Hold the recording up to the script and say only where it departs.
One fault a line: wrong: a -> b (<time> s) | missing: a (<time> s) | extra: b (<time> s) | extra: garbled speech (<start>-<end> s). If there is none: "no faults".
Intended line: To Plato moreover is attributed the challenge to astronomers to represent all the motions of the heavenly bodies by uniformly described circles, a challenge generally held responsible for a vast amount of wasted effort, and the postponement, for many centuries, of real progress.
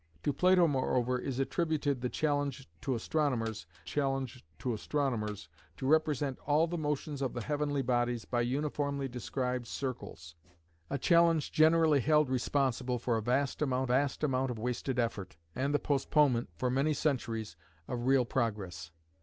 extra: challenge (3.8 s)
extra: astronomers to (4.7 s)
extra: vast amount (13.8 s)